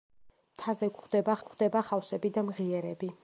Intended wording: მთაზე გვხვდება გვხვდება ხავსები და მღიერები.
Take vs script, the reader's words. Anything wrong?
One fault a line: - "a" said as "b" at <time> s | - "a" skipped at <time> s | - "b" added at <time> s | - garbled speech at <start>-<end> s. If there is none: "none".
none